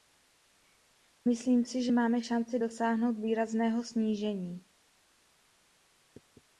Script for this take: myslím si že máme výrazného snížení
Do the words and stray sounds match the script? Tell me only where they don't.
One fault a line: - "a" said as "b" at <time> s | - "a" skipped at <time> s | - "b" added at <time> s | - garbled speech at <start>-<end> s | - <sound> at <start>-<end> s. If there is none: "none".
- "šanci dosáhnout" added at 2.2 s